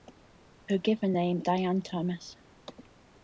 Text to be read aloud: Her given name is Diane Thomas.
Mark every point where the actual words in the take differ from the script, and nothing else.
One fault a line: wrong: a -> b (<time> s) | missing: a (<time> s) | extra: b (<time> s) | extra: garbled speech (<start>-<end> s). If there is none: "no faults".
missing: is (1.4 s)